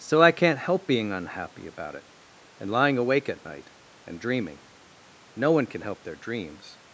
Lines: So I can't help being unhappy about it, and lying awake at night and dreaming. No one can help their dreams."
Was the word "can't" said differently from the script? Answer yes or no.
no